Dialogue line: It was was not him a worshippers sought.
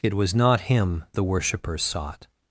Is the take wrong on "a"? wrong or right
wrong